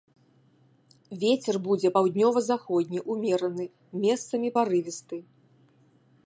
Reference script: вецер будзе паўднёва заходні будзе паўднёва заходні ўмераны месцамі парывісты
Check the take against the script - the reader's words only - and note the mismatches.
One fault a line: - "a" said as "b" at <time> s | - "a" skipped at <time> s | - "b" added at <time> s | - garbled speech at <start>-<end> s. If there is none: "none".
- "будзе паўднёва заходні" skipped at 3.0 s